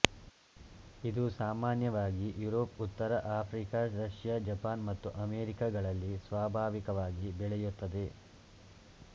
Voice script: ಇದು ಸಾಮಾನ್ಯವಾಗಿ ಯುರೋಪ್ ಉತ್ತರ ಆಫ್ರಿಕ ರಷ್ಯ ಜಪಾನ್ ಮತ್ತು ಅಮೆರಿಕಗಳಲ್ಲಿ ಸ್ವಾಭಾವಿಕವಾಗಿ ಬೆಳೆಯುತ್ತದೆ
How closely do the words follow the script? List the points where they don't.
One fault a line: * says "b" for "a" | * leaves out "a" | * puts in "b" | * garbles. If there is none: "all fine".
all fine